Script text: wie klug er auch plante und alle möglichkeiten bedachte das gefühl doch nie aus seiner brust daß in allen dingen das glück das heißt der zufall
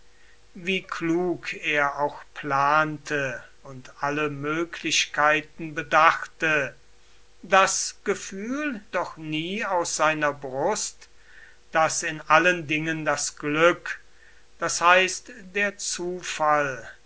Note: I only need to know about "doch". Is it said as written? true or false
true